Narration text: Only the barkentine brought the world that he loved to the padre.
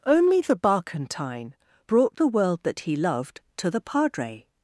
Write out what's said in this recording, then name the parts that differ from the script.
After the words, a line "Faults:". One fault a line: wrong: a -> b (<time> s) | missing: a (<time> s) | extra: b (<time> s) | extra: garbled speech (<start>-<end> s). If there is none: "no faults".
Only the barkentine brought the world that he loved to the padre.
Faults:
no faults